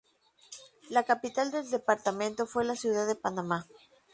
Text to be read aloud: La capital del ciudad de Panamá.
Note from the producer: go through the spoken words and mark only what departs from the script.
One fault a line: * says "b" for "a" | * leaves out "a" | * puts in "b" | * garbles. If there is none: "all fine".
* puts in "departamento fue la"